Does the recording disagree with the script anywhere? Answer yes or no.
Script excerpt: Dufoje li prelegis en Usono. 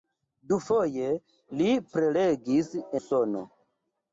yes